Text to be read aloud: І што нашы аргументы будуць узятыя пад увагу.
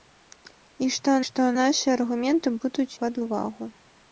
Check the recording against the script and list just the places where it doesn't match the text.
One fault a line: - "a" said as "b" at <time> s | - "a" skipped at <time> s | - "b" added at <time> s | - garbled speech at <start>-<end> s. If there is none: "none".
- "што" added at 1.3 s
- "узятыя" skipped at 2.9 s